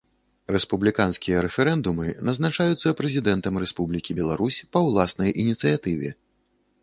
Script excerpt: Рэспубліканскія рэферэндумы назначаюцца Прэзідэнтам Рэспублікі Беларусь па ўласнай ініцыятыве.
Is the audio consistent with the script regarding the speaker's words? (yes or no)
yes